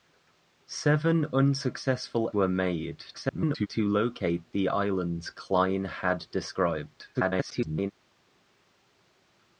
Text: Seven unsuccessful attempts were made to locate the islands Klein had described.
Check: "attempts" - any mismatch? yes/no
yes